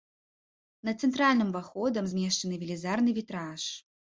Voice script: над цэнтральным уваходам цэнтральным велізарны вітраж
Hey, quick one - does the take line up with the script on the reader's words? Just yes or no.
no